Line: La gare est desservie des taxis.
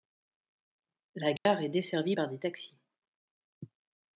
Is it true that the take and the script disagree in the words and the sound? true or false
true